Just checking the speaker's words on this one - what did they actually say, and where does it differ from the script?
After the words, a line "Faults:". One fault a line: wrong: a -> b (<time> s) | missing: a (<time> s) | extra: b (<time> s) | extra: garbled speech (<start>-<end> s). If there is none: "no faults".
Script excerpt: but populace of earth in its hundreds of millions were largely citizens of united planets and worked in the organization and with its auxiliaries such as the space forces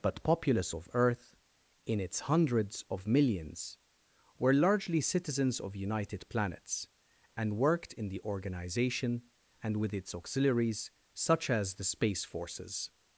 but populace of earth in its hundreds of millions were largely citizens of united planets and worked in the organization and with its auxiliaries such as the space forces
Faults:
no faults